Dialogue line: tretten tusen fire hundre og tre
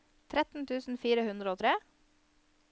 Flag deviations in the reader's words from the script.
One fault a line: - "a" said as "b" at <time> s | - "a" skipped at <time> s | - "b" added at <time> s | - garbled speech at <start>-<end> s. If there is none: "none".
none